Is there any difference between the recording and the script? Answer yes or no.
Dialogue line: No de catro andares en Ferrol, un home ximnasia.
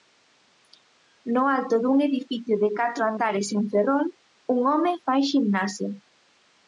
yes